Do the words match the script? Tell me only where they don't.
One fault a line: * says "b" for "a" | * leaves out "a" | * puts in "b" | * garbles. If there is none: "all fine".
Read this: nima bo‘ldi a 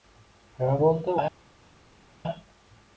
all fine